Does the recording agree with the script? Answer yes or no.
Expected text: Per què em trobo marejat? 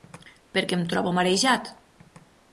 yes